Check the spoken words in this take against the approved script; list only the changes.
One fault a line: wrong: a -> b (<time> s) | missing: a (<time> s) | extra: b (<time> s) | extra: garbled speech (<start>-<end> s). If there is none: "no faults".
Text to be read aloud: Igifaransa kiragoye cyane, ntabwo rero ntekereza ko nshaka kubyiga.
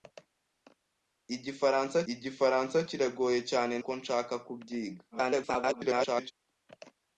extra: igifaransa (2.1 s)
missing: ntabwo rero ntekereza (3.7 s)
extra: garbled speech (5.1-6.3 s)